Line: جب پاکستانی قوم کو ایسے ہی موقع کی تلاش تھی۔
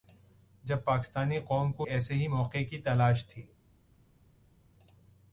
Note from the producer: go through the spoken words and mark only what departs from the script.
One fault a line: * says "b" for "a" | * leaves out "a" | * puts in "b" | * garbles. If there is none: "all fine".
all fine